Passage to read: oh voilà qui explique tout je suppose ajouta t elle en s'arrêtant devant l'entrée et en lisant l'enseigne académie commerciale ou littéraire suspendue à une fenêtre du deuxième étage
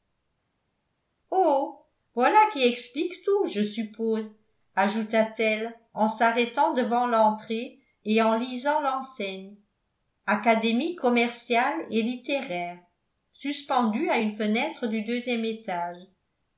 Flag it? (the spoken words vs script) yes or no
yes